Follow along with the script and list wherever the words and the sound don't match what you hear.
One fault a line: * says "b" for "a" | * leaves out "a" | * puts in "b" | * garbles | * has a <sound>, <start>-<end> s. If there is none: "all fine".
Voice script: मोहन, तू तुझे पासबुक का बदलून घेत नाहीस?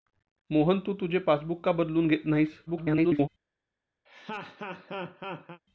* garbles
* has a laugh, 4.1-5.6 s